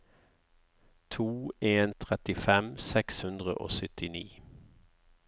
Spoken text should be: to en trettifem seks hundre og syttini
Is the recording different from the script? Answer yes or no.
no